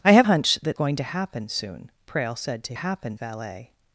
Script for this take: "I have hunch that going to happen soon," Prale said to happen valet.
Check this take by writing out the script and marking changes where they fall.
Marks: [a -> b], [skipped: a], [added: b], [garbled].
"I have hunch that going to happen soon," Prale said to happen valet.